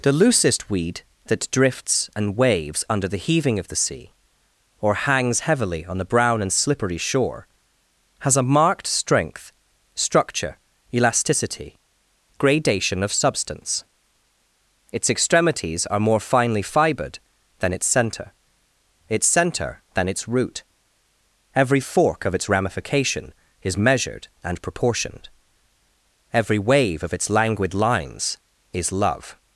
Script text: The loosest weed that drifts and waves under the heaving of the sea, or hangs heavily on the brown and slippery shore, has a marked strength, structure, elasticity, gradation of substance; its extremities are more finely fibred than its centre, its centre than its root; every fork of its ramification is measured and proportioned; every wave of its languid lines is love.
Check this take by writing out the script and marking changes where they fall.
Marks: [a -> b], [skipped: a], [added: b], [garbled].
The loosest weed that drifts and waves under the heaving of the sea, or hangs heavily on the brown and slippery shore, has a marked strength, structure, elasticity, gradation of substance; its extremities are more finely fibred than its centre, its centre than its root; every fork of its ramification is measured and proportioned; every wave of its languid lines is love.